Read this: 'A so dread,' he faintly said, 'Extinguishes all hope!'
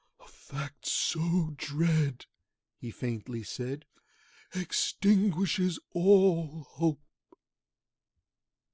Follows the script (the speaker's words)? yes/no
no